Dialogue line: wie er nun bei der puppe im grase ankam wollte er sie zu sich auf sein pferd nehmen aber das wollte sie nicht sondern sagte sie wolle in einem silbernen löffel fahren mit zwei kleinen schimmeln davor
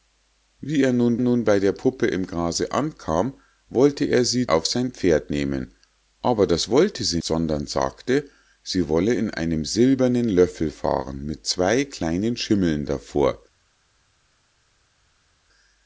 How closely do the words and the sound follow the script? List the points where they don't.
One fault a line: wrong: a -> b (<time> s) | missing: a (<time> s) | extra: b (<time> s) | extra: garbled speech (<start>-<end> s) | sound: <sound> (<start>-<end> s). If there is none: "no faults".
extra: nun (1.2 s)
missing: zu sich (4.5 s)
missing: nicht (7.2 s)